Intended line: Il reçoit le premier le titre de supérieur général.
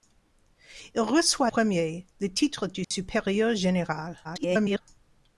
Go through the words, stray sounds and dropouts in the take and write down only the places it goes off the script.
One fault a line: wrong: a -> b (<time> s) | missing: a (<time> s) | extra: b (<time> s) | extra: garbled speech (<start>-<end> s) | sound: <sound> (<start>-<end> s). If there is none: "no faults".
missing: le (1.5 s)
sound: dropout (2.8-2.9 s)
extra: garbled speech (4.2-4.8 s)